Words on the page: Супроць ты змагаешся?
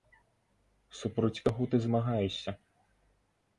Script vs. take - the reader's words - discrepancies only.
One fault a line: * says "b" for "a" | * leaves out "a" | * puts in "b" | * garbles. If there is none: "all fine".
* puts in "каго"